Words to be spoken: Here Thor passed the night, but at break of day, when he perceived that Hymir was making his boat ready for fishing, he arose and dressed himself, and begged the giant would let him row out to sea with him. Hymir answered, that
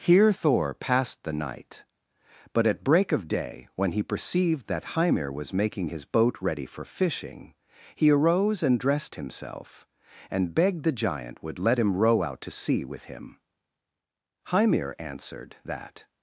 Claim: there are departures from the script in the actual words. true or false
false